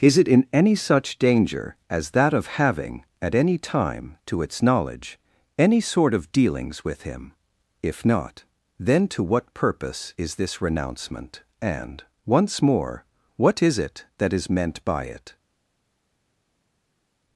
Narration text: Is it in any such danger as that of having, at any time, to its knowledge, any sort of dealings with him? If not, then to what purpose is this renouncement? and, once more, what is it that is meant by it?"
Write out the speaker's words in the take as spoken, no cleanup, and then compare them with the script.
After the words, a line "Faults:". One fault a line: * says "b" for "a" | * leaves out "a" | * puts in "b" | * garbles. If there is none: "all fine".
Is it in any such danger as that of having, at any time, to its knowledge, any sort of dealings with him? If not, then to what purpose is this renouncement? and, once more, what is it that is meant by it?"
Faults:
all fine